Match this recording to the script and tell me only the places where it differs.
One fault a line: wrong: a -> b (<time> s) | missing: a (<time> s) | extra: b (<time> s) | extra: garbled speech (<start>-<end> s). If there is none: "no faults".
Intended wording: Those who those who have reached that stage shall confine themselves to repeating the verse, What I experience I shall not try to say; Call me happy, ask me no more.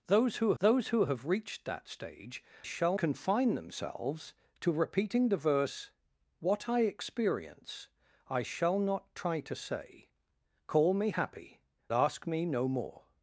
no faults